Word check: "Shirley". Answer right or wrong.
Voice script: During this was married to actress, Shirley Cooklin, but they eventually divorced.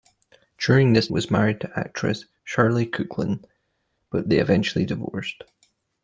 right